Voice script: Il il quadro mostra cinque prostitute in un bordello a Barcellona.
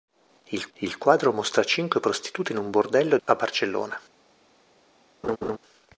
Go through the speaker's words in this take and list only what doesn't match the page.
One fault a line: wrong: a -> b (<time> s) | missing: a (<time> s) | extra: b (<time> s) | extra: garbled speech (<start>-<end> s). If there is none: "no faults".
no faults